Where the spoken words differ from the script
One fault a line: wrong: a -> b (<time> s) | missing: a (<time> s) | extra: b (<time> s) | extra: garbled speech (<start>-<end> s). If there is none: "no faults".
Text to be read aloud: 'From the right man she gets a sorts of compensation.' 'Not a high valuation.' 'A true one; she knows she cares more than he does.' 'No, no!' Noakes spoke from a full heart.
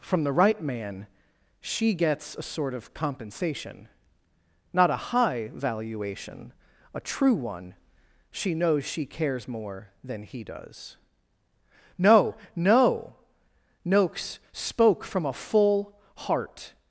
wrong: sorts -> sort (2.4 s)